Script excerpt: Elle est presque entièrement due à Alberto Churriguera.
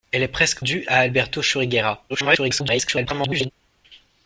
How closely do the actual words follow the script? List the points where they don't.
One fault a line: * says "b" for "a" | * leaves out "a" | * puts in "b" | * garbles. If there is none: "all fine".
* leaves out "entièrement"
* garbles